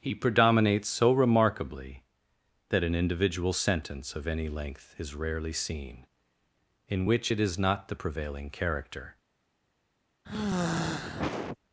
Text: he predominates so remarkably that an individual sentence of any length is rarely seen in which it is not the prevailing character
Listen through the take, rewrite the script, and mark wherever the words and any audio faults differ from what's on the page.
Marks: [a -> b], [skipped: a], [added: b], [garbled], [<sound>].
he predominates so remarkably that an individual sentence of any length is rarely seen in which it is not the prevailing character [sigh]